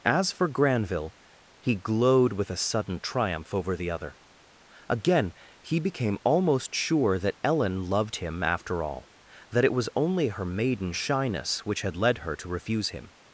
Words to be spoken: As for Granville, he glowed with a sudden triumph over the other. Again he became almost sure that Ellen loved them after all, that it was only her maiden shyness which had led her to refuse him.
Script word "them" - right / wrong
wrong